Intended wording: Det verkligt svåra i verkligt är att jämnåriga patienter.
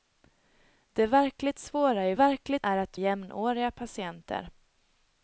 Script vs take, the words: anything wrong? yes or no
no